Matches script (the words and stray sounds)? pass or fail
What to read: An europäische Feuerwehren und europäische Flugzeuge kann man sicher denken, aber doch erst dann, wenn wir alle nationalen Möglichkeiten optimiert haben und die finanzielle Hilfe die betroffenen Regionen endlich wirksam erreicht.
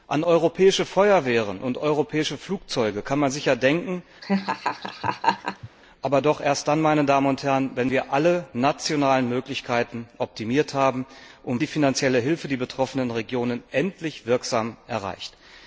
fail